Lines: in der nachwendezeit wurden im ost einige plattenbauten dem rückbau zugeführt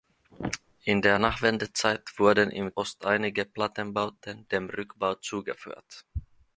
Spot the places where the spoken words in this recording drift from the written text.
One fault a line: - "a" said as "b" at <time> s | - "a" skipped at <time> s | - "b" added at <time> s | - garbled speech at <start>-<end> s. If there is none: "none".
none